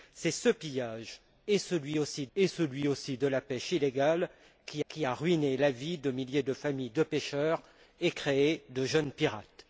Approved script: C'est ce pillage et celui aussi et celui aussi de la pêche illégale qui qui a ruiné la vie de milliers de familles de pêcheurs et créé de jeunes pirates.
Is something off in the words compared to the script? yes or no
no